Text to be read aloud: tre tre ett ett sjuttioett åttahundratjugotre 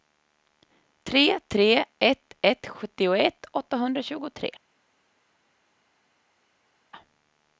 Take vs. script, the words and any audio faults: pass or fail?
pass